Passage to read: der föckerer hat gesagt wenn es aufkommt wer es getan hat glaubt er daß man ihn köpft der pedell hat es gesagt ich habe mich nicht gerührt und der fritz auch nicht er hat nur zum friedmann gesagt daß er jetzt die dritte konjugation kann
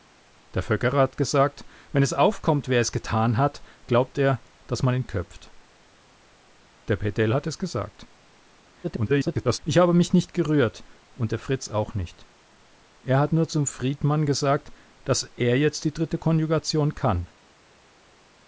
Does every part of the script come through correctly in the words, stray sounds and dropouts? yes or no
no